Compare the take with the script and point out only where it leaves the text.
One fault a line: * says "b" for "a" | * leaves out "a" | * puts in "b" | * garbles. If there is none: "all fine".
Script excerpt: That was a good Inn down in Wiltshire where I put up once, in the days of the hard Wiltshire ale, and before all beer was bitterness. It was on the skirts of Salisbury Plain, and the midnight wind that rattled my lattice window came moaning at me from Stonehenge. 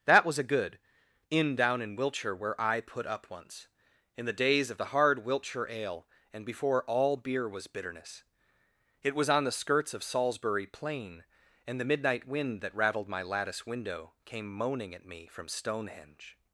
all fine